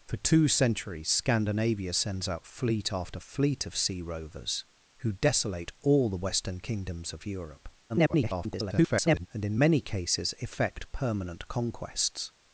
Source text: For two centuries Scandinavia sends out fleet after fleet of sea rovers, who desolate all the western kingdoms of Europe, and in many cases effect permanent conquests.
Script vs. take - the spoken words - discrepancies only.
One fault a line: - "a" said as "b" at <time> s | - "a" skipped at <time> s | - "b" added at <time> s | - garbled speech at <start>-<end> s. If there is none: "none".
- garbled speech at 7.9-9.3 s